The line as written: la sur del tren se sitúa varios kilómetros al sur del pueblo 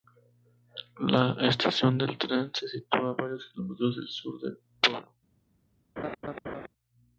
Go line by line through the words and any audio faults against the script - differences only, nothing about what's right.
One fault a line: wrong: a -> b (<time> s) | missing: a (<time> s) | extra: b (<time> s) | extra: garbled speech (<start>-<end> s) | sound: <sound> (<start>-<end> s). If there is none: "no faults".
wrong: sur -> estación (1.5 s)
sound: laugh (6.0-6.7 s)